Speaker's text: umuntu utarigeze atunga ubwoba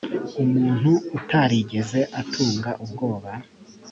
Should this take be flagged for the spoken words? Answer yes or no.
no